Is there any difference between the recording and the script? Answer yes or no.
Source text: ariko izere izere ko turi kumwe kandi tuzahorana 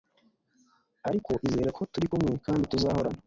yes